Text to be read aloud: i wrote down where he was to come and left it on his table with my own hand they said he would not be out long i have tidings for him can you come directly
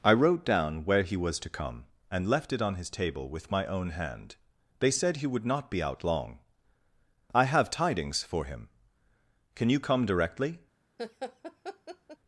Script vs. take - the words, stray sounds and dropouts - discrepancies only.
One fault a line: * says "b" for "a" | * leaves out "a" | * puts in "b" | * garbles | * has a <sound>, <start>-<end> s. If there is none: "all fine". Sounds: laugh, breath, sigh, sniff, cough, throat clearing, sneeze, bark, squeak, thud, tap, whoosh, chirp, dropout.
* has a laugh, 11.0-12.2 s